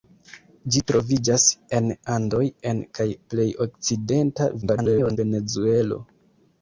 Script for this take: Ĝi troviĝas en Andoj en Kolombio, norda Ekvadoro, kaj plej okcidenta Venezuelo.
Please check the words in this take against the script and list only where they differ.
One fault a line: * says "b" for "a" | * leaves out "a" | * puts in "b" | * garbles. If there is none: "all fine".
* leaves out "Kolombio norda Ekvadoro"
* garbles